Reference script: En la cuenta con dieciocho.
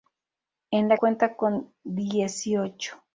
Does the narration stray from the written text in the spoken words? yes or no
no